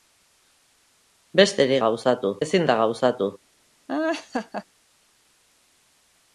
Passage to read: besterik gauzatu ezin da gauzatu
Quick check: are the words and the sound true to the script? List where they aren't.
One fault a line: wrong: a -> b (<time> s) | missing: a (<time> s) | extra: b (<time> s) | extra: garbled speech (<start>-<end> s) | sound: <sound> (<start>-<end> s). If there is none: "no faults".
sound: laugh (3.9-4.6 s)